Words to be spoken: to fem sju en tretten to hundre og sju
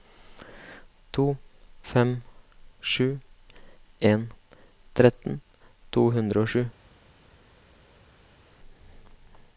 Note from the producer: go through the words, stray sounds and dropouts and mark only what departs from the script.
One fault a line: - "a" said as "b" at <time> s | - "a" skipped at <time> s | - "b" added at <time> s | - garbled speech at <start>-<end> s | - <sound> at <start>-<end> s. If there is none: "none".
none